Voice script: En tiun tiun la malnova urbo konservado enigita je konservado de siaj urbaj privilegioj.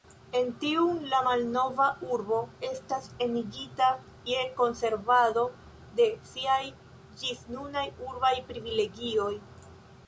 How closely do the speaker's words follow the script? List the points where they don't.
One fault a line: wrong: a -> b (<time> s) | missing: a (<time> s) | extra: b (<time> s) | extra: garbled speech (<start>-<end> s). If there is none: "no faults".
missing: tiun (1.0 s)
wrong: konservado -> estas (2.7 s)
extra: ĝisnunaj (7.2 s)